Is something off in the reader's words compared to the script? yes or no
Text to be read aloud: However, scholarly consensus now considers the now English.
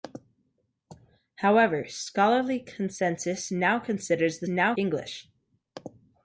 no